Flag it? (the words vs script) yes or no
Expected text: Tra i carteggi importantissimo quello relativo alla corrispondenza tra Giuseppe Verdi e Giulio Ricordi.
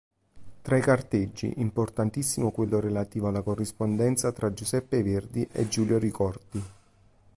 no